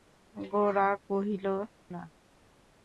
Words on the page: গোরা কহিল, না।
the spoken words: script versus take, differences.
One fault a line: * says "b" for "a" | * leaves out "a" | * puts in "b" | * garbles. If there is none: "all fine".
all fine